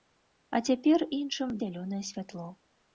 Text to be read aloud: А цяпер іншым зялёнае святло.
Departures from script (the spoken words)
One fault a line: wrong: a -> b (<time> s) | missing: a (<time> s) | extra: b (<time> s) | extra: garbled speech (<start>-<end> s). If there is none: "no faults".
no faults